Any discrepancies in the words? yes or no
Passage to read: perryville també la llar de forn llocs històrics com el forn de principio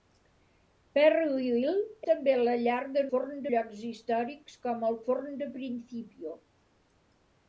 no